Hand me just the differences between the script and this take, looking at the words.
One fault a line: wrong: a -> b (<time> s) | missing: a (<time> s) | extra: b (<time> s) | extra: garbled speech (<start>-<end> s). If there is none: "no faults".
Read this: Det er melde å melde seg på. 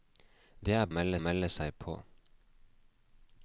no faults